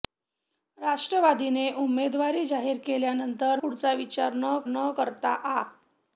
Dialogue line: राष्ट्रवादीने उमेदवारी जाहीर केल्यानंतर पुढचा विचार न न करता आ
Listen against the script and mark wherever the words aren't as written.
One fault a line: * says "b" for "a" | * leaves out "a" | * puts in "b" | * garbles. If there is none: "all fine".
all fine